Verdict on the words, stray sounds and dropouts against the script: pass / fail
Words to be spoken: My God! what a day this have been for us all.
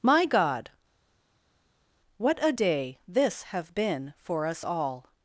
pass